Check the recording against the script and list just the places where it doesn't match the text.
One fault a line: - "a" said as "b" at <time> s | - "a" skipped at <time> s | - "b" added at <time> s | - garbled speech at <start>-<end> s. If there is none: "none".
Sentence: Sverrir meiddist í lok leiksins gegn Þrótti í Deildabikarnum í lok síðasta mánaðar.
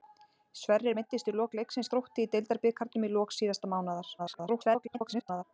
- "gegn" skipped at 1.9 s
- garbled speech at 4.2-5.4 s